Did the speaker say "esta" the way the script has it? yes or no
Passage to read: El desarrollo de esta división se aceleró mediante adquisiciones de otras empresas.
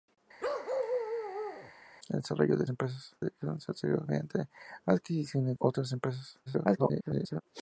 no